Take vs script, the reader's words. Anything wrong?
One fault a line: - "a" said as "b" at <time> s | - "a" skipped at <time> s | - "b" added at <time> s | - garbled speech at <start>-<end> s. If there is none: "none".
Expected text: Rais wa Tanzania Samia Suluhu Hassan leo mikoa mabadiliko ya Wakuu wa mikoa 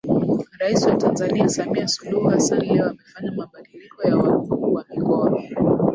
- "mikoa" said as "amefanya" at 2.9 s